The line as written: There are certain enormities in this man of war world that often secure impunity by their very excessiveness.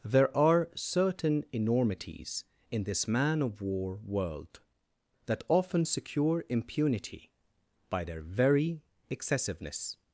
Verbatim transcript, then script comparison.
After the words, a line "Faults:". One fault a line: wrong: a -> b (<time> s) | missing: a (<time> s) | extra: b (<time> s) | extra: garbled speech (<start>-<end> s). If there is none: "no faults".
There are certain enormities in this man of war world that often secure impunity by their very excessiveness.
Faults:
no faults